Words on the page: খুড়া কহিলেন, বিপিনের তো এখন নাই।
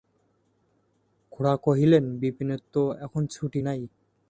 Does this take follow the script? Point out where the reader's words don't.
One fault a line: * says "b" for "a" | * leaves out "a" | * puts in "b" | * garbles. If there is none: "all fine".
* puts in "ছুটি"